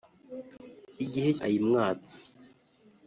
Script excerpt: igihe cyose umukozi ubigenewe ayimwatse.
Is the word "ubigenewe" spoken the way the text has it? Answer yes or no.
no